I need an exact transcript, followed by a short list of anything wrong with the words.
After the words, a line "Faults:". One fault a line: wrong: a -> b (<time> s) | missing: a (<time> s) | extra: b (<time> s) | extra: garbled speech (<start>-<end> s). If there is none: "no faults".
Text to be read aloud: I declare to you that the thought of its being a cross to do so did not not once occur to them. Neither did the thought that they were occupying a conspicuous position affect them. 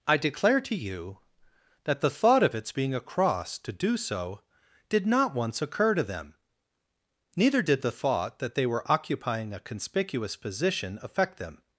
I declare to you that the thought of its being a cross to do so did not once occur to them. Neither did the thought that they were occupying a conspicuous position affect them.
Faults:
missing: not (5.4 s)